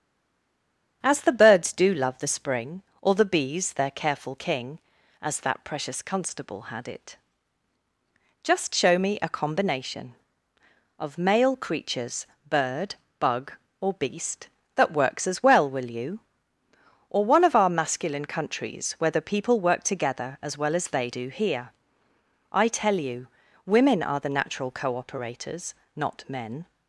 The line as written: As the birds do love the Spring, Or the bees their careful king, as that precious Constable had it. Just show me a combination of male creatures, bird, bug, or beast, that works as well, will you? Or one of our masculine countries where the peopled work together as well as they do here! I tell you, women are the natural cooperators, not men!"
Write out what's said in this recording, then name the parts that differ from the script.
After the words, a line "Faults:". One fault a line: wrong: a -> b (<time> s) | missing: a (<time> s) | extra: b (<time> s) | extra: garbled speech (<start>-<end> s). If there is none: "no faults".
As the birds do love the Spring, Or the bees their careful king, as that precious Constable had it. Just show me a combination of male creatures, bird, bug, or beast, that works as well, will you? Or one of our masculine countries where the people work together as well as they do here! I tell you, women are the natural cooperators, not men!"
Faults:
wrong: peopled -> people (19.2 s)